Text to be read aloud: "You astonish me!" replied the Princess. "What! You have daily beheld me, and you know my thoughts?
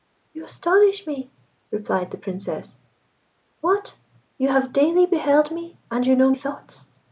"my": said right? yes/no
no